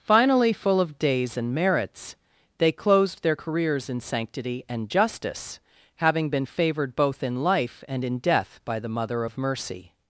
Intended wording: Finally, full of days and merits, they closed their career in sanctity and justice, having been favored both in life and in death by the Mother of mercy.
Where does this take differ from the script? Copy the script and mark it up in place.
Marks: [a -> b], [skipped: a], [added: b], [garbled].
Finally, full of days and merits, they closed their [career -> careers] in sanctity and justice, having been favored both in life and in death by the Mother of mercy.